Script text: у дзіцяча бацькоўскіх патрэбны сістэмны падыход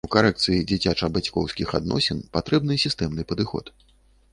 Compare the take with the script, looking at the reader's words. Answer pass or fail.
fail